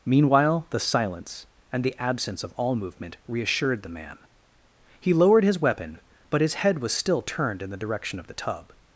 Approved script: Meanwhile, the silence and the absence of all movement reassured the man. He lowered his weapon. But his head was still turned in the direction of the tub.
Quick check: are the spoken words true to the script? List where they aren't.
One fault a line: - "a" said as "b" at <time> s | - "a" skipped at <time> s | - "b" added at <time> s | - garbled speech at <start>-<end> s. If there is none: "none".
none